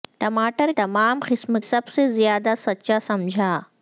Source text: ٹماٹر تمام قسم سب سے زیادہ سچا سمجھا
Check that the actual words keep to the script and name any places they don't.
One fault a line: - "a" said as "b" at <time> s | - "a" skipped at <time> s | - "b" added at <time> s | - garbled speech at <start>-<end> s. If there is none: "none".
none